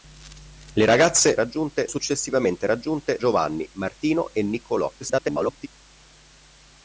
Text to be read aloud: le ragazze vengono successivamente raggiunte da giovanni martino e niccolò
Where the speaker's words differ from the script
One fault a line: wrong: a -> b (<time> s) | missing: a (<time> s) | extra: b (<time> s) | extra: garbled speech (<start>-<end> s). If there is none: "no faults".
wrong: vengono -> raggiunte (1.4 s)
missing: da (3.2 s)
extra: garbled speech (5.0-5.7 s)